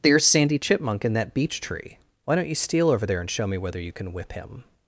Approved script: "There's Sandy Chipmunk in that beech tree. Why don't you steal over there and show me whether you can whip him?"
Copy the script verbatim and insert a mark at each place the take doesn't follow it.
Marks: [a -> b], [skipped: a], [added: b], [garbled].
"There's Sandy Chipmunk in that beech tree. Why don't you steal over there and show me whether you can whip him?"